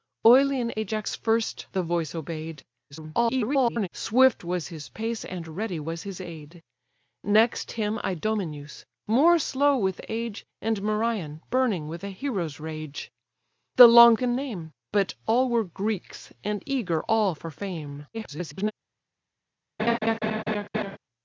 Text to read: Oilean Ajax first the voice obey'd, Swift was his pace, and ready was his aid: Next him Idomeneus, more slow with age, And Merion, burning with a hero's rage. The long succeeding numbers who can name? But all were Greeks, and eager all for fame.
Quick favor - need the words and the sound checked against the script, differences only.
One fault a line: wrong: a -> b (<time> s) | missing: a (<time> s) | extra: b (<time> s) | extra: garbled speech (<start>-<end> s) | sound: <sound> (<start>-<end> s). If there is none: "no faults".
extra: garbled speech (2.9-3.9 s)
missing: succeeding numbers who (14.2 s)
extra: garbled speech (18.1-18.7 s)
sound: laugh (19.8-21.0 s)